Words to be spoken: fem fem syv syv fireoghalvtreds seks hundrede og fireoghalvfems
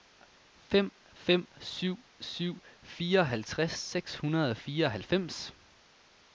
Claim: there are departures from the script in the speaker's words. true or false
false